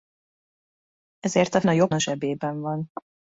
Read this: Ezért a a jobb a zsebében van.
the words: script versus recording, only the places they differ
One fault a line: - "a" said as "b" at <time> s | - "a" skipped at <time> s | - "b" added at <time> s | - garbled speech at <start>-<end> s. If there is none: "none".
none